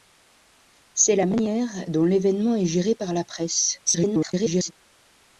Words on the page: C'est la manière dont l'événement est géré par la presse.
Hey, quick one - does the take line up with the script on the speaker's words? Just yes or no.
no